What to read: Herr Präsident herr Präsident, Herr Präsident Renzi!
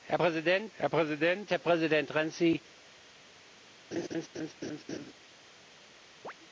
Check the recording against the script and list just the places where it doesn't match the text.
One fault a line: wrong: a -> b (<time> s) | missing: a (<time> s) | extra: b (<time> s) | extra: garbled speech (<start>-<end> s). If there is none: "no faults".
no faults